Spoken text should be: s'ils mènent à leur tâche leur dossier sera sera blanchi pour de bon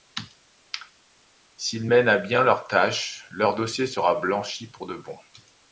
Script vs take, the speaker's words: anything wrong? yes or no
yes